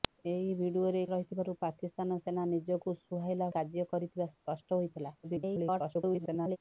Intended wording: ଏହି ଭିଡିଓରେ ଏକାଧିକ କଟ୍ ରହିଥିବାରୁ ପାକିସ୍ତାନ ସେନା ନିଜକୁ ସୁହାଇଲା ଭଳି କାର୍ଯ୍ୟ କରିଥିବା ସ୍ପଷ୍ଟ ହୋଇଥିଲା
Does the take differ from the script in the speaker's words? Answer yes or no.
yes